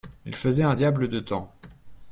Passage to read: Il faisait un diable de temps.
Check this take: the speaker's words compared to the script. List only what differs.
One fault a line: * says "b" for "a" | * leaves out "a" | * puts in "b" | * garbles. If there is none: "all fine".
all fine